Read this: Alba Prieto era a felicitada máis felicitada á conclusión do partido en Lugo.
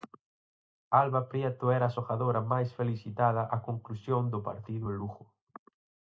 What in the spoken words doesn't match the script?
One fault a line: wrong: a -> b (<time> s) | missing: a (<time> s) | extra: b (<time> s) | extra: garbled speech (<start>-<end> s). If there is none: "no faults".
wrong: felicitada -> xogadora (2.0 s)